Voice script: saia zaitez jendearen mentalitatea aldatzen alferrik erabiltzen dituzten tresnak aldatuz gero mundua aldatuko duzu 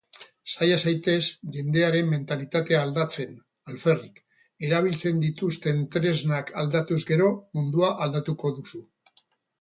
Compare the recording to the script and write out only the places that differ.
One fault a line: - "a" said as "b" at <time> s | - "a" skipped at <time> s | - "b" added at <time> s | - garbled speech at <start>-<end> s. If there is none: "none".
none